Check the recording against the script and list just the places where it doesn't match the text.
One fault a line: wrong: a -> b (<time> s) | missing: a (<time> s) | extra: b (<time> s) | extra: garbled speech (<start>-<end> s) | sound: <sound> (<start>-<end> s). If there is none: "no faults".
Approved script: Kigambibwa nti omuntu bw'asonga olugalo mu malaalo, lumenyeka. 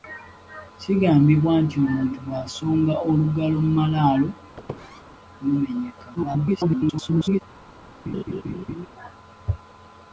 sound: squeak (4.6-5.0 s)
extra: garbled speech (6.2-7.4 s)
sound: laugh (8.1-8.9 s)